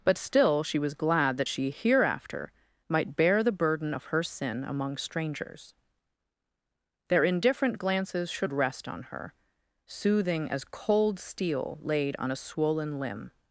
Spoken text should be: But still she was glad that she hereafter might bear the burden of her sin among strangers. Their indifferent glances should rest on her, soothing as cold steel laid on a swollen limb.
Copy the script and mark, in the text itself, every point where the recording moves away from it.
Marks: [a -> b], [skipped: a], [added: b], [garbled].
But still she was glad that she hereafter might bear the burden of her sin among strangers. Their indifferent glances should rest on her, soothing as cold steel laid on a swollen limb.